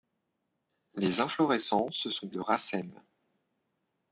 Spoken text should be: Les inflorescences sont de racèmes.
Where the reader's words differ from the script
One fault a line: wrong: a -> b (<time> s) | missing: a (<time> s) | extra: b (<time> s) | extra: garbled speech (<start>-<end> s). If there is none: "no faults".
no faults